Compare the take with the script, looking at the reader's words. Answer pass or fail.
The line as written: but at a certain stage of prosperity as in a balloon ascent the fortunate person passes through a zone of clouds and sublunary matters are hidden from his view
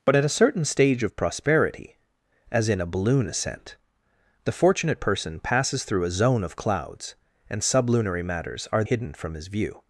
pass